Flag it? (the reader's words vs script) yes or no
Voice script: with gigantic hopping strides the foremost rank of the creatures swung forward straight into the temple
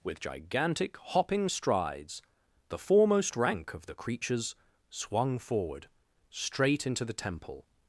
no